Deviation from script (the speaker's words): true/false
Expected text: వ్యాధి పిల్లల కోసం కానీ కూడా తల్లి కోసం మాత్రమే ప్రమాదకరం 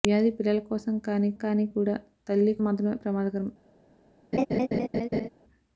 true